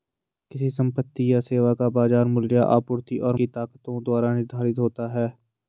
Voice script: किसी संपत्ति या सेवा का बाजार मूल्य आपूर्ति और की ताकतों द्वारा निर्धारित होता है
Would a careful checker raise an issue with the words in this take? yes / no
no